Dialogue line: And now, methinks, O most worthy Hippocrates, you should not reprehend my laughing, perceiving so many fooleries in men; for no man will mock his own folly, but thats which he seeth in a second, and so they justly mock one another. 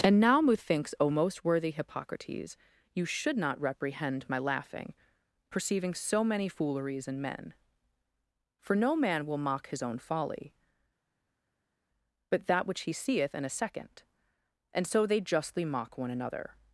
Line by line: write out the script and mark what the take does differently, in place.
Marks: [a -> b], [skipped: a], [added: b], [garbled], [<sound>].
And now, methinks, O most worthy Hippocrates, you should not reprehend my laughing, perceiving so many fooleries in men; for no man will mock his own folly, but [thats -> that] which he seeth in a second, and so they justly mock one another.